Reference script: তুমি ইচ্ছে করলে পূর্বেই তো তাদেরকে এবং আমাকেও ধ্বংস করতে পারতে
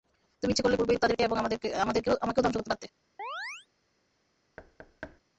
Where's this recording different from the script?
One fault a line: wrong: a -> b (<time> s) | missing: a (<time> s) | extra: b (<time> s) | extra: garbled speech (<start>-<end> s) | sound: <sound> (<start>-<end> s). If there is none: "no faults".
sound: chirp (3.2-3.7 s)
sound: thud (4.6-5.2 s)